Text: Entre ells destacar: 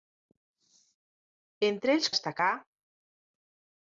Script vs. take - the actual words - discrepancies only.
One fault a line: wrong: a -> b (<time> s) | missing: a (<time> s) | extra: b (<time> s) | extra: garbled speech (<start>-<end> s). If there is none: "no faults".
no faults